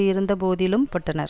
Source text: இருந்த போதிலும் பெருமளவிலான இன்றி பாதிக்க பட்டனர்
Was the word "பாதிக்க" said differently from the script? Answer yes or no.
yes